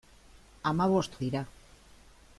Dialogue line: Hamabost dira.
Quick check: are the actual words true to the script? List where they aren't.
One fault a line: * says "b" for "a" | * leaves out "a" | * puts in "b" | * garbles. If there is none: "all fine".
all fine